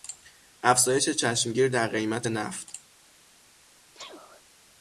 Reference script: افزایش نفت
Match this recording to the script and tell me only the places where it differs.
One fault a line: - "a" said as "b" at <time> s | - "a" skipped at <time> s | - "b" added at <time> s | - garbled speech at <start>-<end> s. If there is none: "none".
- "چشمگیر در قیمت" added at 1.1 s